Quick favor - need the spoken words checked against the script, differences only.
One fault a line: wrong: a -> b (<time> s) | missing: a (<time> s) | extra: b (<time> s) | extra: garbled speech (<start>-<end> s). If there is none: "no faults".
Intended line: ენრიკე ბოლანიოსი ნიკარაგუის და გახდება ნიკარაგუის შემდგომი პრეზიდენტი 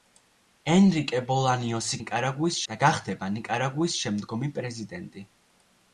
no faults